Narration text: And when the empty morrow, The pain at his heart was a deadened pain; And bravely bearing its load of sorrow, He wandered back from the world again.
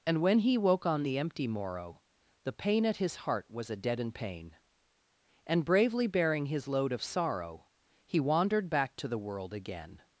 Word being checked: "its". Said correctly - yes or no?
no